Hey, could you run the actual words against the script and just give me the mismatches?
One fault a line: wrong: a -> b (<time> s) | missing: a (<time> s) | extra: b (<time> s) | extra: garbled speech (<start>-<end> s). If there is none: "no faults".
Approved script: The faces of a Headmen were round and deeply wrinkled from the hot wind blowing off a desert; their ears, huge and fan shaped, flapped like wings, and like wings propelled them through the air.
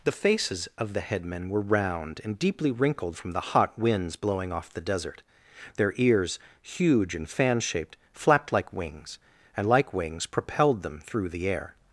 wrong: a -> the (0.9 s)
wrong: wind -> winds (3.8 s)
wrong: a -> the (4.7 s)